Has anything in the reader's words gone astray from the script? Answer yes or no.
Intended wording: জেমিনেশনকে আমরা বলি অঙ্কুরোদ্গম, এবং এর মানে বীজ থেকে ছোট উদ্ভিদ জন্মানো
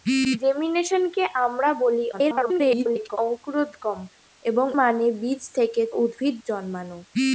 yes